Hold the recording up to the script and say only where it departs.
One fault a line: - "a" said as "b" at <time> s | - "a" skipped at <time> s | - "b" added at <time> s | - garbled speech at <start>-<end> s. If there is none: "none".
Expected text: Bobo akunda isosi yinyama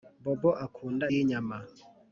- "isosi" skipped at 1.1 s